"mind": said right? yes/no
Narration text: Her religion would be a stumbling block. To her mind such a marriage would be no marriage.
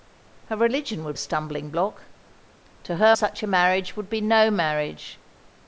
no